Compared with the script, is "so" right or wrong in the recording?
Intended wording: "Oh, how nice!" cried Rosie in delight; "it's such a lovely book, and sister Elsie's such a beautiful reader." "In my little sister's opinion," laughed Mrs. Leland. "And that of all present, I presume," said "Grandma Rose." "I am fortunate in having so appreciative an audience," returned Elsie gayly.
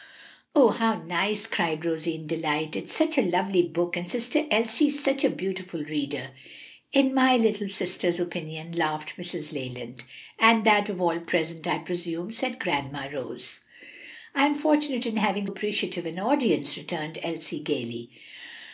wrong